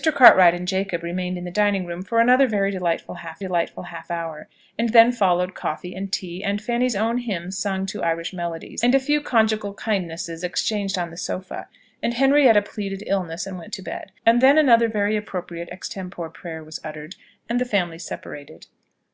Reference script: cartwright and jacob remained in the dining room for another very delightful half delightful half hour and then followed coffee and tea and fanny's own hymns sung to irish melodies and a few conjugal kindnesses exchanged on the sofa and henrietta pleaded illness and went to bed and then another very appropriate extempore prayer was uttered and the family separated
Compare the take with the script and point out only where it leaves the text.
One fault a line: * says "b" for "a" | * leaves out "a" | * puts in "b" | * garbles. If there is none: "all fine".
all fine